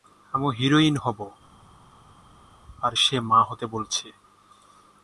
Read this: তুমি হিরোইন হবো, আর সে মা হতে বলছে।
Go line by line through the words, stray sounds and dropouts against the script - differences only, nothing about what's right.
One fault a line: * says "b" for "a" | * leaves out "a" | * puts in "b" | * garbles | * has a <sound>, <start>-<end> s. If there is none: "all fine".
* says "আমি" for "তুমি"